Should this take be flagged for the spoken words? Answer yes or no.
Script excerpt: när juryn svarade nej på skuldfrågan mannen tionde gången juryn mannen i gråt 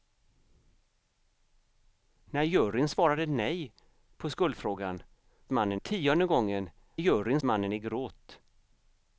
no